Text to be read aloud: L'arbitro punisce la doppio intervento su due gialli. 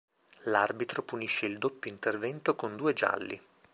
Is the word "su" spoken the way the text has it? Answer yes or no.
no